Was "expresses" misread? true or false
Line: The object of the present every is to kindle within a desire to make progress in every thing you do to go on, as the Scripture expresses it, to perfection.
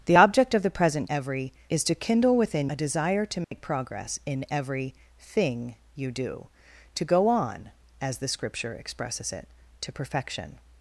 false